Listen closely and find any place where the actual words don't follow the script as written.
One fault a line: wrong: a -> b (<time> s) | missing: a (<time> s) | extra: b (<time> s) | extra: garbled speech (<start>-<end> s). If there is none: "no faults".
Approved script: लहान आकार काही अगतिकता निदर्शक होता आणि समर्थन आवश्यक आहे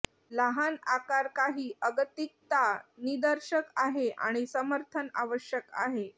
wrong: होता -> आहे (3.8 s)